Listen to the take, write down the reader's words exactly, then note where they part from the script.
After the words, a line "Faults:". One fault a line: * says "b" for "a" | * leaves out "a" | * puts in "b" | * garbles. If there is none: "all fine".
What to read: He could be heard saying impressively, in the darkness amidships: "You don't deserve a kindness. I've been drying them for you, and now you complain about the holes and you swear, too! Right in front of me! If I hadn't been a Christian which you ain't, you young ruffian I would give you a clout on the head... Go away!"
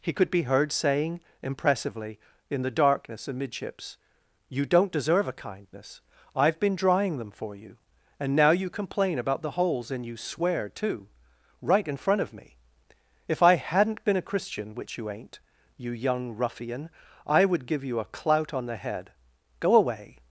He could be heard saying impressively, in the darkness amidships: "You don't deserve a kindness. I've been drying them for you, and now you complain about the holes and you swear, too! Right in front of me! If I hadn't been a Christian which you ain't, you young ruffian I would give you a clout on the head... Go away!"
Faults:
all fine